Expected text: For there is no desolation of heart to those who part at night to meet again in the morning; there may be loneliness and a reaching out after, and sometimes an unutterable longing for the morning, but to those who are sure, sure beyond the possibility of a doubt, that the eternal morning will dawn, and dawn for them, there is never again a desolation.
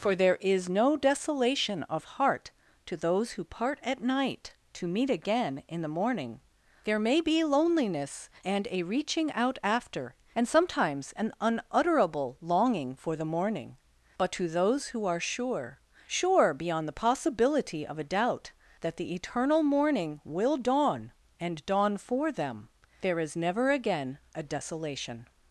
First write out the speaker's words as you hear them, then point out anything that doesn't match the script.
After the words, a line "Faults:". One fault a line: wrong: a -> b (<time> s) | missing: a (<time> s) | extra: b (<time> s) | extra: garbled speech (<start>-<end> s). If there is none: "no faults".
For there is no desolation of heart to those who part at night to meet again in the morning; there may be loneliness and a reaching out after, and sometimes an unutterable longing for the morning, but to those who are sure, sure beyond the possibility of a doubt, that the eternal morning will dawn, and dawn for them, there is never again a desolation.
Faults:
no faults